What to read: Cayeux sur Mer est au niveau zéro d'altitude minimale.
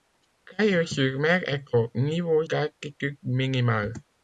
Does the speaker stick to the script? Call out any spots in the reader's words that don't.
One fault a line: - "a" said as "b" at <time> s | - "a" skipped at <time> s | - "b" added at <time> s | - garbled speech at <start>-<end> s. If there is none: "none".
- "zéro" skipped at 2.5 s